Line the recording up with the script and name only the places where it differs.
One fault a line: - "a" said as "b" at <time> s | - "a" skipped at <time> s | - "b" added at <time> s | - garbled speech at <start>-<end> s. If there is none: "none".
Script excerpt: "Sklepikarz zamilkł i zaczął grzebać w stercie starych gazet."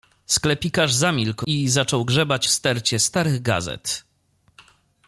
none